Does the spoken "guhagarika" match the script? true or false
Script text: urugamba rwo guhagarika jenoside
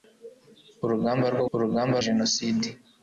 false